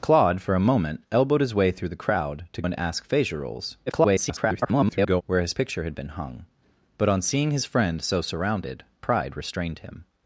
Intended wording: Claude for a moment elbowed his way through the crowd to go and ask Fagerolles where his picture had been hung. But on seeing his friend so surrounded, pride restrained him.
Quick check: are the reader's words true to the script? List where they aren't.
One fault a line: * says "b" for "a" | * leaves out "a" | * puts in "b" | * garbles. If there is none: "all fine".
* leaves out "go"
* garbles